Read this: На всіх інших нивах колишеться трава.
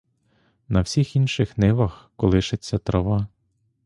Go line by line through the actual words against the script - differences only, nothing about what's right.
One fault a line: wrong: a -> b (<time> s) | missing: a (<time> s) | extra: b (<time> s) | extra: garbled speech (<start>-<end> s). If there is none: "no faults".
no faults